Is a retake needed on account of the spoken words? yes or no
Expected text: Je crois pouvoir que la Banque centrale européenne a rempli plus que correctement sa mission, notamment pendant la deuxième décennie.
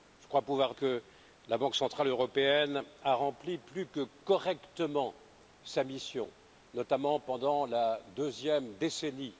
no